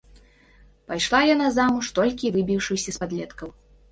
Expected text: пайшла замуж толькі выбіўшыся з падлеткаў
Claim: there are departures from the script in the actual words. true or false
true